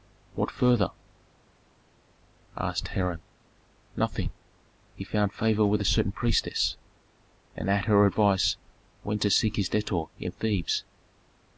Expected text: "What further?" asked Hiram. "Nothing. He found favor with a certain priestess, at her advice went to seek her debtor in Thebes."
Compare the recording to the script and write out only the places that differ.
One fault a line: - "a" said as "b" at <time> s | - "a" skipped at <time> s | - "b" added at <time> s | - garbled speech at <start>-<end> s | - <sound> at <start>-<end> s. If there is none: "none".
- "and" added at 7.5 s
- "her" said as "his" at 9.6 s